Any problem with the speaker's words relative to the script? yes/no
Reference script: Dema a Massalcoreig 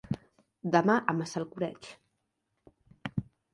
no